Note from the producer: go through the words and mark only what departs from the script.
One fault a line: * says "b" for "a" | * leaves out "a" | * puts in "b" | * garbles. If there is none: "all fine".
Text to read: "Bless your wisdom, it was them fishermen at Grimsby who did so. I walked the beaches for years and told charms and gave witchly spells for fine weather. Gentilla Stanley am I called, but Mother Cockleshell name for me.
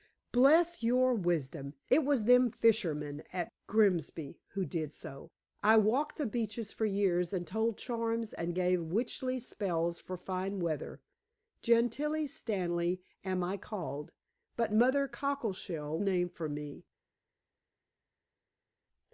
all fine